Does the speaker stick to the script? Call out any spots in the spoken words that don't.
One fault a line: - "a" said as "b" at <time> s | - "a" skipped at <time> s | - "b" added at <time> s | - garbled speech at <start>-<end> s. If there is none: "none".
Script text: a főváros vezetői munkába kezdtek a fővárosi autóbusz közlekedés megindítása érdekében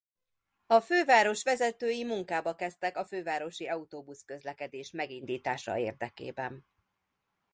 none